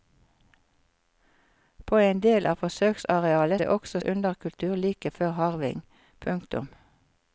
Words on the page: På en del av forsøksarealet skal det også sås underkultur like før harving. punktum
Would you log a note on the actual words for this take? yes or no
yes